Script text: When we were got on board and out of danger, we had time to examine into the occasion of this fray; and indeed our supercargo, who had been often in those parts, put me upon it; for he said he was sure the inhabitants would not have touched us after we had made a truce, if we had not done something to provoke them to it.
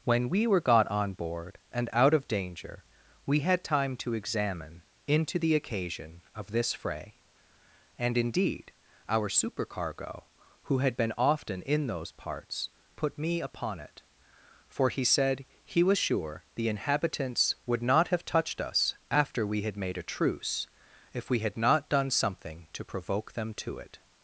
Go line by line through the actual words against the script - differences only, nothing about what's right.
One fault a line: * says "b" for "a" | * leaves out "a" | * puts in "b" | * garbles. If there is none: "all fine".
all fine